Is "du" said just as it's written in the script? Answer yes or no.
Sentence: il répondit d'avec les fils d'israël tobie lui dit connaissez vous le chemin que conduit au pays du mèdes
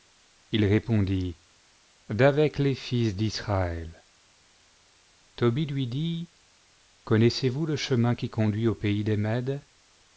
no